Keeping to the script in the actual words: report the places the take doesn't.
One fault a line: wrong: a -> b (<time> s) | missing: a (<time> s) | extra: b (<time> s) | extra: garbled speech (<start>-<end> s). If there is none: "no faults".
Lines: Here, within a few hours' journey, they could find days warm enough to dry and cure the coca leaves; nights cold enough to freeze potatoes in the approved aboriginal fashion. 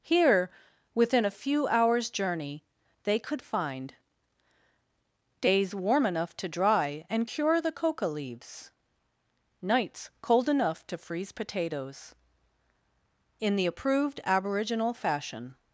no faults